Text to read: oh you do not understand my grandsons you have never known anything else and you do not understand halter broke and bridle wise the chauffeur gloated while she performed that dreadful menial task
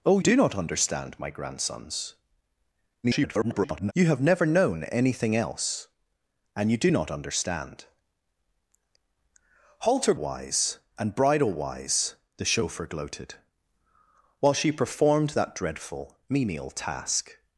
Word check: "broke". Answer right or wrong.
wrong